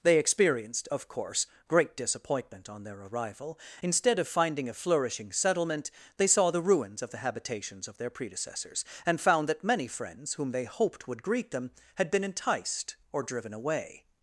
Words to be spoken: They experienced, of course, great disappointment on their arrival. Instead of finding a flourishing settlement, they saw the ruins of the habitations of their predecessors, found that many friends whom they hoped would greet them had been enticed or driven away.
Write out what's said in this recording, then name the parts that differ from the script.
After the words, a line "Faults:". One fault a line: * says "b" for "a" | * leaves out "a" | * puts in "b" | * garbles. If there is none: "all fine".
They experienced, of course, great disappointment on their arrival. Instead of finding a flourishing settlement, they saw the ruins of the habitations of their predecessors, and found that many friends whom they hoped would greet them had been enticed or driven away.
Faults:
* puts in "and"